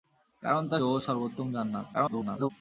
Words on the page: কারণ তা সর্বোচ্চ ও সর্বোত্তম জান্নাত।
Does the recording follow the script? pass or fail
fail